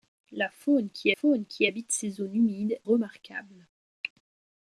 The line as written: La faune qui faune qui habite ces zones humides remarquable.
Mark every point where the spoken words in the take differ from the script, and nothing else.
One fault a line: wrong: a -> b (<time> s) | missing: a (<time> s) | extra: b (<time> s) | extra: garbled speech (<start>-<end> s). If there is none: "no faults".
no faults